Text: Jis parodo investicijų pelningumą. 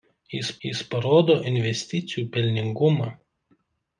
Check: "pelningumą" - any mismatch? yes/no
no